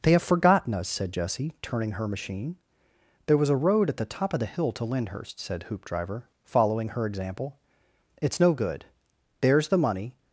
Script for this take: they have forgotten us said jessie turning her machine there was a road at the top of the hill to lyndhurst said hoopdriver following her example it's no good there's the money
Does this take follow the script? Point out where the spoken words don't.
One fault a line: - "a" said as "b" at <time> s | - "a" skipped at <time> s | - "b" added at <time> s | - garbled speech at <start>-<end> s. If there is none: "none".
none